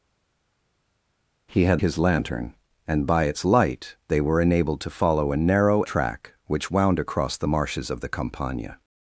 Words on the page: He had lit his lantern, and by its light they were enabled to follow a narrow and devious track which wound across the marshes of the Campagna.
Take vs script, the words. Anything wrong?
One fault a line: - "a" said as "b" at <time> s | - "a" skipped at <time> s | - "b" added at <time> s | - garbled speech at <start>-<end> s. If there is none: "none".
- "lit" skipped at 1.8 s
- "and devious" skipped at 5.8 s